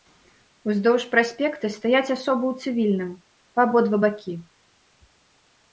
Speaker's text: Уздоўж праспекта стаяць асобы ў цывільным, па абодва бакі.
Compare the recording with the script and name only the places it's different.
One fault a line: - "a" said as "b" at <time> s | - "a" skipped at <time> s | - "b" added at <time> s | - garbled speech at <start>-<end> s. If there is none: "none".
none